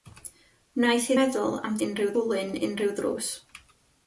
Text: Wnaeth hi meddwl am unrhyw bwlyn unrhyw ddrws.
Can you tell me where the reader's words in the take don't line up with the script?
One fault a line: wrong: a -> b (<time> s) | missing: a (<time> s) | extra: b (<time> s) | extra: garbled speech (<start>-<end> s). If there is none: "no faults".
no faults